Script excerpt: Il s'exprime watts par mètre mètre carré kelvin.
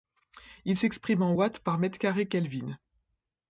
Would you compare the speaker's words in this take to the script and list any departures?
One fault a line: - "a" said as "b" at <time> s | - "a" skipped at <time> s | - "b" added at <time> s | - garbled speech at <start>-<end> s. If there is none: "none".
- "en" added at 1.2 s
- "mètre" skipped at 2.0 s